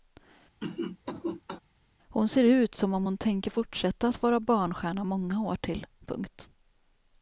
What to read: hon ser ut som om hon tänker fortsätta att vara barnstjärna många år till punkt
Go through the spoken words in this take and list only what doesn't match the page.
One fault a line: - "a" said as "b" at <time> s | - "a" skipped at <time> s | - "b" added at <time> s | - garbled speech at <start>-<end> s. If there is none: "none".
none